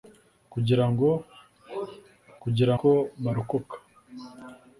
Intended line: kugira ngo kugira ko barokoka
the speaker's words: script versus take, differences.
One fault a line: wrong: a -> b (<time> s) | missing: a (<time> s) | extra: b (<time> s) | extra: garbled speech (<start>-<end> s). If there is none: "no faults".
no faults